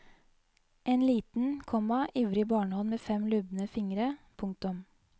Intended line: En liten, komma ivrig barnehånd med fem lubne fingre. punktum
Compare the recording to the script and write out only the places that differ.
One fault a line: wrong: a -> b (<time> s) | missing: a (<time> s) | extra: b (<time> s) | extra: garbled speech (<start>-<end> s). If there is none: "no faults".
no faults